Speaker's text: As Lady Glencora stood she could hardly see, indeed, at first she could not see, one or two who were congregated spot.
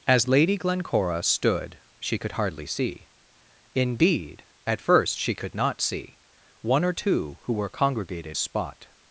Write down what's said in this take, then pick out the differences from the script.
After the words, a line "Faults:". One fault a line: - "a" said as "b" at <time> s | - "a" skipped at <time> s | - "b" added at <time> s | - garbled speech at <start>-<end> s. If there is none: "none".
As Lady Glencora stood she could hardly see, indeed, at first she could not see, one or two who were congregated spot.
Faults:
none